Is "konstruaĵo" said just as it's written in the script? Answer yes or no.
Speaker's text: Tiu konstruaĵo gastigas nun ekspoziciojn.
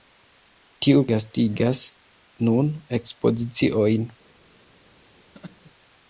no